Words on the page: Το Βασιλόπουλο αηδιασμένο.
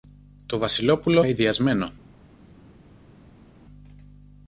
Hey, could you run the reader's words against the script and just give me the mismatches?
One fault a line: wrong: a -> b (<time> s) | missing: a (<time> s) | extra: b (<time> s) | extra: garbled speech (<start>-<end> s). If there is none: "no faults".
no faults